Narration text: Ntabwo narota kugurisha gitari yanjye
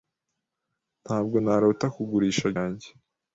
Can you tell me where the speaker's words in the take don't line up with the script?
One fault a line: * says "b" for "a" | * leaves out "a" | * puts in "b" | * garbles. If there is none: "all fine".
* leaves out "gitari"